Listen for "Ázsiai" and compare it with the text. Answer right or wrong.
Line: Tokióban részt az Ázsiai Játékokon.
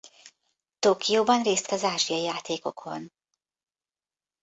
right